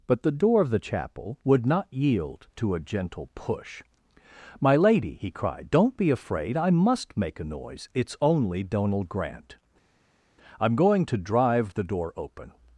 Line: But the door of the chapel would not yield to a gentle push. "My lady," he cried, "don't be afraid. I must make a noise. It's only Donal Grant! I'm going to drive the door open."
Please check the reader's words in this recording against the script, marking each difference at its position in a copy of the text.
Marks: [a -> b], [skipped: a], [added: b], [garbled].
But the door of the chapel would not yield to a gentle push. "My lady," he cried, "don't be afraid. I must make a noise. It's only Donal Grant! I'm going to drive the door open."